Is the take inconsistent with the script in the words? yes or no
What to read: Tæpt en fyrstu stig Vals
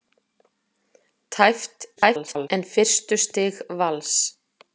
yes